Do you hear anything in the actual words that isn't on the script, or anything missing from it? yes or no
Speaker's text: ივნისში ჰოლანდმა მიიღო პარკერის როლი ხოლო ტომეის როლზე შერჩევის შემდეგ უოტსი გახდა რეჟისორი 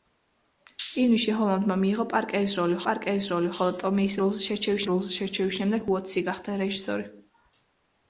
yes